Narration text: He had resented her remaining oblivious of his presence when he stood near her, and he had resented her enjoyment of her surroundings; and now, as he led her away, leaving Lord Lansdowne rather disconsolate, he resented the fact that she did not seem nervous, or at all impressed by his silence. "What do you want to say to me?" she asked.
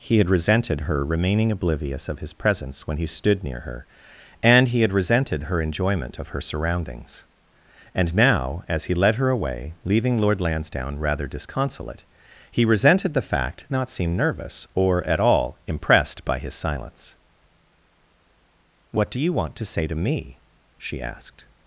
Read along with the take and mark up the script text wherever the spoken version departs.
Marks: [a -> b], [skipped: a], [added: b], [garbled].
He had resented her remaining oblivious of his presence when he stood near her, and he had resented her enjoyment of her surroundings; and now, as he led her away, leaving Lord Lansdowne rather disconsolate, he resented the fact [skipped: that she did] not seem nervous, or at all impressed by his silence. "What do you want to say to me?" she asked.